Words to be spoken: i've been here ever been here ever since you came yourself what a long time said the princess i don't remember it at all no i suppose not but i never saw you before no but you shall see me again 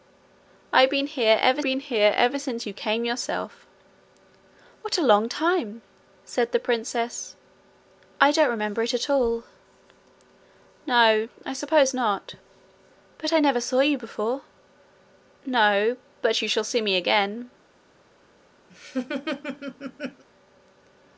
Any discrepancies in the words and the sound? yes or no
yes